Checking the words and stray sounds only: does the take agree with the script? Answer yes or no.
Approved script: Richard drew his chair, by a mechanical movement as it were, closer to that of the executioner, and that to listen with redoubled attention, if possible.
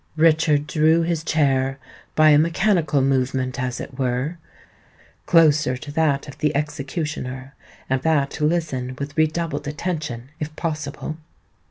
yes